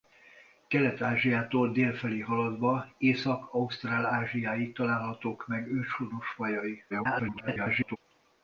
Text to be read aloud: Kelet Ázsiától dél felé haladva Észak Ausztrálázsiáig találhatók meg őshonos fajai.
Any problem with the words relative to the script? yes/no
yes